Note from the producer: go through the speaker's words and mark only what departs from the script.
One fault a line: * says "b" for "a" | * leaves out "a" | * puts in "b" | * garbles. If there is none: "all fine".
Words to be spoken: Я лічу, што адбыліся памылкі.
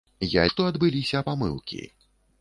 * leaves out "лічу"